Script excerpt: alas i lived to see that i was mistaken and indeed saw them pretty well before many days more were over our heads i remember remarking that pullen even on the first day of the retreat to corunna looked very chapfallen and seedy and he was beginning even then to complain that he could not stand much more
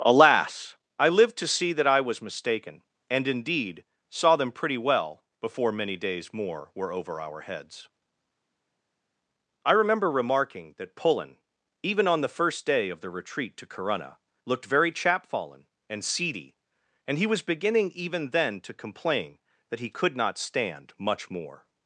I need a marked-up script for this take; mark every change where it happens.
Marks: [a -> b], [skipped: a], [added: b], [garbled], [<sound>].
alas i lived to see that i was mistaken and indeed saw them pretty well before many days more were over our heads i remember remarking that pullen even on the first day of the retreat to corunna looked very chapfallen and seedy and he was beginning even then to complain that he could not stand much more